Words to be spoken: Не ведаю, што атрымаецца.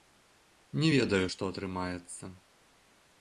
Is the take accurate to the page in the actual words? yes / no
yes